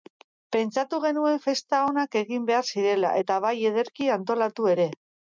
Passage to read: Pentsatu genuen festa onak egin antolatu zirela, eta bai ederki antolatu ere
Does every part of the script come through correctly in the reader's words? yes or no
no